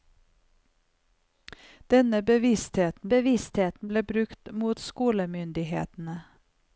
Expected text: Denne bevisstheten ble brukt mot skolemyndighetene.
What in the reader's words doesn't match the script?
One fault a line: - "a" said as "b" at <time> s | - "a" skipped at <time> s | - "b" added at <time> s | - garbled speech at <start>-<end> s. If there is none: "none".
- "bevisstheten" added at 3.1 s